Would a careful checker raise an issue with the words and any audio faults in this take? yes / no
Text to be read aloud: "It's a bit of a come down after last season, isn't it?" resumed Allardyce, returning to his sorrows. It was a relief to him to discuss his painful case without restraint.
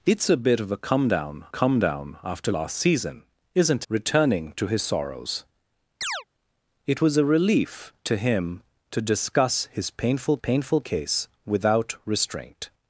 yes